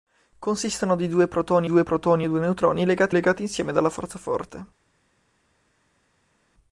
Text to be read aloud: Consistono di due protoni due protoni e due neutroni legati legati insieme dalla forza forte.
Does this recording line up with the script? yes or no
yes